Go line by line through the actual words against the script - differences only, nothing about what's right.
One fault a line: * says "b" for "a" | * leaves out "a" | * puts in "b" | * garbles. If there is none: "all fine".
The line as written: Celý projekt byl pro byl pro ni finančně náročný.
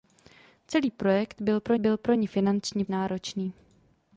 all fine